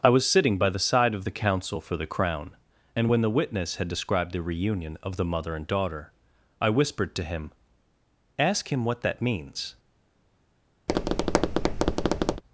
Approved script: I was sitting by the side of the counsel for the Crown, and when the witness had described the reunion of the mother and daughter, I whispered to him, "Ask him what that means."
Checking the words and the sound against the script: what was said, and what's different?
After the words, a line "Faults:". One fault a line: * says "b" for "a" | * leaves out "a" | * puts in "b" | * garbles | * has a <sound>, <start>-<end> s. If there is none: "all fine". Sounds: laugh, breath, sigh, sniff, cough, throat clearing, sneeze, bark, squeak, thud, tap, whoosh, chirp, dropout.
I was sitting by the side of the counsel for the Crown, and when the witness had described the reunion of the mother and daughter, I whispered to him, "Ask him what that means."
Faults:
* has a tap, 10.9-12.4 s